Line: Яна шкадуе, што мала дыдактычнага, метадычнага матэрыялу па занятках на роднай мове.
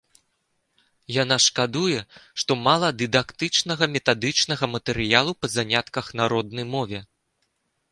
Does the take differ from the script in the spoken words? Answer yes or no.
no